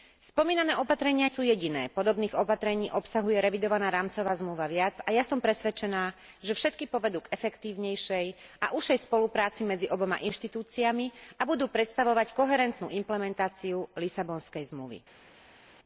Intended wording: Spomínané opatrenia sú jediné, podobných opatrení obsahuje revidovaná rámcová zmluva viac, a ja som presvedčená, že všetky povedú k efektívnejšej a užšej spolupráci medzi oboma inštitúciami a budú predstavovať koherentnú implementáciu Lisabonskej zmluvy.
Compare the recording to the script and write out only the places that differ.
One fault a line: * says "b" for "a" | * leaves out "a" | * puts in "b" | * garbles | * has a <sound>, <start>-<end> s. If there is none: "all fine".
all fine